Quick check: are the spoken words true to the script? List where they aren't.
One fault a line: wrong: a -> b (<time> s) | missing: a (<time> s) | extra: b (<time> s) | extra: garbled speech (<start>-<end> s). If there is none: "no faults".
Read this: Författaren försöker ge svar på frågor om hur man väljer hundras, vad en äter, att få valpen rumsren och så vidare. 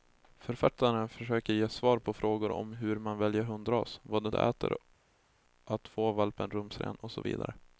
no faults